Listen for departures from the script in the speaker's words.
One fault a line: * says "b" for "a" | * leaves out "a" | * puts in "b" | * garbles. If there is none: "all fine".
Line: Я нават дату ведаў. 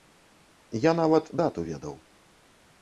all fine